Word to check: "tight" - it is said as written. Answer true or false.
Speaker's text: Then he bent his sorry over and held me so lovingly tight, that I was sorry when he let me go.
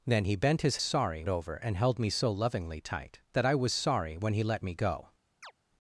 true